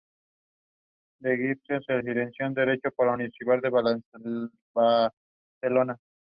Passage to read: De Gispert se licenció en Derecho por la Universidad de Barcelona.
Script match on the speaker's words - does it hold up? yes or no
yes